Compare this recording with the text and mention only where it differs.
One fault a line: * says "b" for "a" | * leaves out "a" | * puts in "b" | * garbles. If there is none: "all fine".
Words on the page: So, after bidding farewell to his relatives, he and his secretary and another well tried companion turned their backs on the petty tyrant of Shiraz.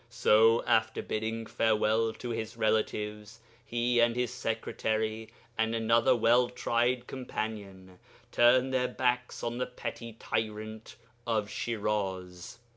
all fine